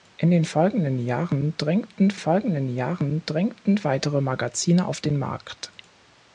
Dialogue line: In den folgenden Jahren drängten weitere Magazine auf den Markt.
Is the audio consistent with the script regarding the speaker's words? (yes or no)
no